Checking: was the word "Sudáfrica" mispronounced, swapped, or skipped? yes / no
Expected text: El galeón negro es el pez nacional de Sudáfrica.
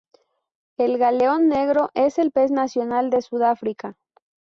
no